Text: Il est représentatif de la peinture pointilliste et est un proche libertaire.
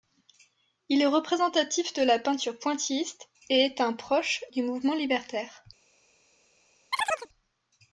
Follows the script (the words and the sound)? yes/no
no